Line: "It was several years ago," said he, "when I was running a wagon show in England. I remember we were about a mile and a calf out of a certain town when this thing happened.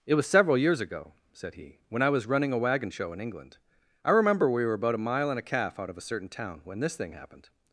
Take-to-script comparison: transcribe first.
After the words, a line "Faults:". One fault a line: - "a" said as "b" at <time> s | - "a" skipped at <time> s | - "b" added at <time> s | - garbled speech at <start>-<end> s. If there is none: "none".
"It was several years ago," said he, "when I was running a wagon show in England. I remember we were about a mile and a calf out of a certain town when this thing happened.
Faults:
none